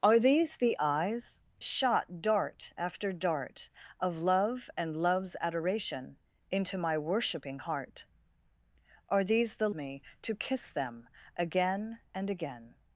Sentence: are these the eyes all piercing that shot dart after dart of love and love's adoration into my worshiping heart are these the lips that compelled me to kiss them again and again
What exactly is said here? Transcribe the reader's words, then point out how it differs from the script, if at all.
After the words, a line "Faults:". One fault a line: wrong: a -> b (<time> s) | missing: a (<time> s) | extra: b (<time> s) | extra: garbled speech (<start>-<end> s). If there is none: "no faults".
are these the eyes shot dart after dart of love and love's adoration into my worshiping heart are these the me to kiss them again and again
Faults:
missing: all piercing that (1.4 s)
missing: lips that compelled (9.7 s)